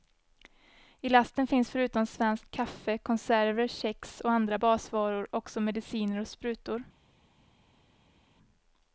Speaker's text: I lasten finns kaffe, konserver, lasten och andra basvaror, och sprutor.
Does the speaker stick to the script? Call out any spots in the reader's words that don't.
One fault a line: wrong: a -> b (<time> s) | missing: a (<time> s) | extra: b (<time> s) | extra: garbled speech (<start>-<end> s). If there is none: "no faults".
extra: förutom svenskt (1.7 s)
wrong: lasten -> kex (3.7 s)
extra: också mediciner (5.3 s)